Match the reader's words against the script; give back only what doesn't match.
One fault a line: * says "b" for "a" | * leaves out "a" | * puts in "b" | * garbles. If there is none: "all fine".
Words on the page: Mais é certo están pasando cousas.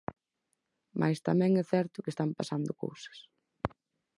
* puts in "tamén"
* puts in "que"